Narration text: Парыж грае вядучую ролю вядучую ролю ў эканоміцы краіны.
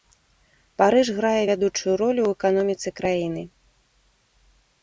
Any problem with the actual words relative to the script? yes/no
yes